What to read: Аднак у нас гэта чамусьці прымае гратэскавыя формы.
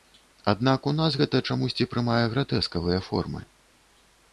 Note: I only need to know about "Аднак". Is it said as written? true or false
true